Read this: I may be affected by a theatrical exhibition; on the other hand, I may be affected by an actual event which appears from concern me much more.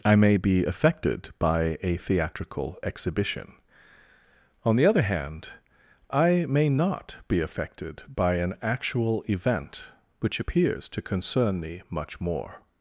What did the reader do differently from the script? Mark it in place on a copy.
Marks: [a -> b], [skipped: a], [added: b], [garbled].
I may be affected by a theatrical exhibition; on the other hand, I may [added: not] be affected by an actual event which appears [from -> to] concern me much more.